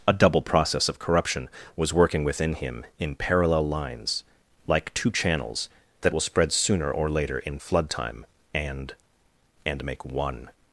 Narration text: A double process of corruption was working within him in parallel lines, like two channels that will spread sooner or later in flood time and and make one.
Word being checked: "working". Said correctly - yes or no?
yes